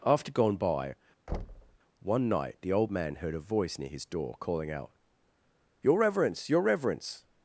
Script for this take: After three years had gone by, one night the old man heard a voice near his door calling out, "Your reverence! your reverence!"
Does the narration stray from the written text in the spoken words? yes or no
yes